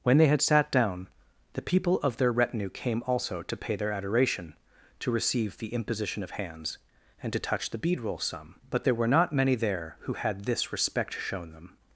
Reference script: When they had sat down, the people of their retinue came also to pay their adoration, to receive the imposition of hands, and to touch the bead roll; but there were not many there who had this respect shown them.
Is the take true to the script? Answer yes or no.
no